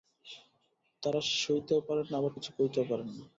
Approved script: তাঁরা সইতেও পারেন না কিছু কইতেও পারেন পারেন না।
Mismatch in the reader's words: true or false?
true